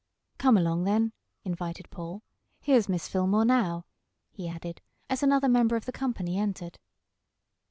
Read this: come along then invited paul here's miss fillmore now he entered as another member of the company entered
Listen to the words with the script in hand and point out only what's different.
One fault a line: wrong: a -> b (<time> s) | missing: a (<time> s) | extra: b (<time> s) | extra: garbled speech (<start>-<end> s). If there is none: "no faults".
wrong: entered -> added (4.5 s)